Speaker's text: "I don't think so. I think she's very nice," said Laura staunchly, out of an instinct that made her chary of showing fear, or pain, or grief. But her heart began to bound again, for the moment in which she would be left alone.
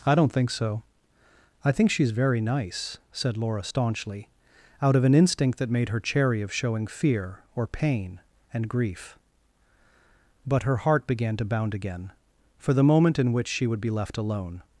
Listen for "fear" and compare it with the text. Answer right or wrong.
right